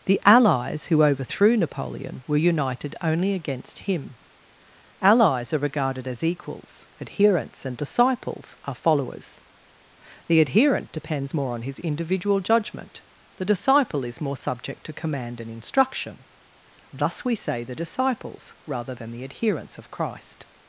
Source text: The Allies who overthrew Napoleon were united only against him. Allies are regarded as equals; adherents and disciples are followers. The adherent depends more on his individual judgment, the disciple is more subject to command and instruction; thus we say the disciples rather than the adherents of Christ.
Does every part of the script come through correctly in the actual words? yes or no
yes